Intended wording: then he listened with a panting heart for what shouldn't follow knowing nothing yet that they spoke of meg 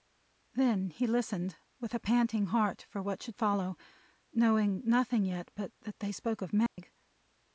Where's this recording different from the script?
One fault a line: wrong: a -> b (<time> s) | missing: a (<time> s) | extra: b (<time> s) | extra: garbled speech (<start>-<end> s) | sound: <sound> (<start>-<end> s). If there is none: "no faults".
wrong: shouldn't -> should (3.2 s)
extra: but (5.5 s)
sound: dropout (6.7-6.8 s)